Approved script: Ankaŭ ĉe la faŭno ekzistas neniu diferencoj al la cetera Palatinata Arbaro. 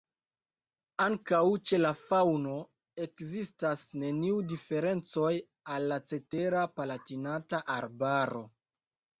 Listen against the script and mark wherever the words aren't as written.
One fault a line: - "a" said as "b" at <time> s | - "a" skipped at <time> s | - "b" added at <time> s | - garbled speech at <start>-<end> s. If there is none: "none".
none